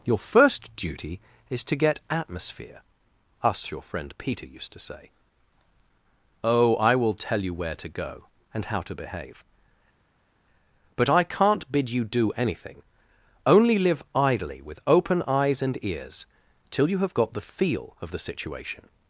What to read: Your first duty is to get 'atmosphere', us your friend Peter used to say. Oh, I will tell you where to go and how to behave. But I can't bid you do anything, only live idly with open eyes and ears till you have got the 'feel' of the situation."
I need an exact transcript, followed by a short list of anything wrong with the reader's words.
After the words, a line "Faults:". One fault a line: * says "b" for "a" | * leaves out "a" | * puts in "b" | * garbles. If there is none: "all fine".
Your first duty is to get 'atmosphere', us your friend Peter used to say. Oh, I will tell you where to go and how to behave. But I can't bid you do anything, only live idly with open eyes and ears till you have got the 'feel' of the situation."
Faults:
all fine